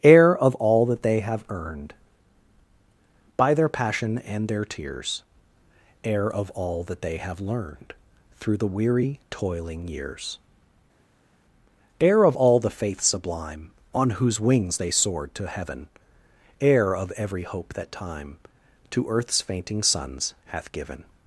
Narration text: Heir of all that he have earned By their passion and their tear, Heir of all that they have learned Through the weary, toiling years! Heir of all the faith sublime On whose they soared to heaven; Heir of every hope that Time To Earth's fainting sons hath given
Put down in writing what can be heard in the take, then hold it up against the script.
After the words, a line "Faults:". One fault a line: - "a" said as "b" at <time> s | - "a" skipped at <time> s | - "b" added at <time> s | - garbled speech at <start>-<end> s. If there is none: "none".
Heir of all that they have earned By their passion and their tears, Heir of all that they have learned Through the weary, toiling years! Heir of all the faith sublime On whose wings they soared to heaven; Heir of every hope that Time To Earth's fainting sons hath given
Faults:
- "he" said as "they" at 1.0 s
- "tear" said as "tears" at 4.7 s
- "wings" added at 14.4 s